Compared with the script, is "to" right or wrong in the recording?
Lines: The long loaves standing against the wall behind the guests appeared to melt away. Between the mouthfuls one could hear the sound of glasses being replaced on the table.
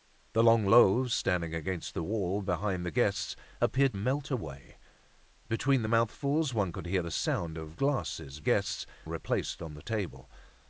wrong